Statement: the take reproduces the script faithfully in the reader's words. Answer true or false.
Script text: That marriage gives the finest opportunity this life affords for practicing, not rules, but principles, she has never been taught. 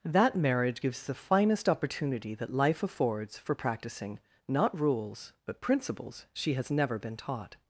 false